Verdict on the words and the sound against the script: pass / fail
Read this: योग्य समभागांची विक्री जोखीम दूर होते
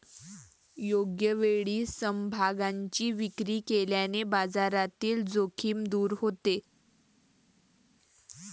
fail